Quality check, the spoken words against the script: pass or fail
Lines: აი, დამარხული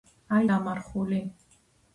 pass